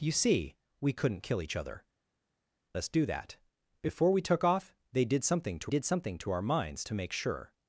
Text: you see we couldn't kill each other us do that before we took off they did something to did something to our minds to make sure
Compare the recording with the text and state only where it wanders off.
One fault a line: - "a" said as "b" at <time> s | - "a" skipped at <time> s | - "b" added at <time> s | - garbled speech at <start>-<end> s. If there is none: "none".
none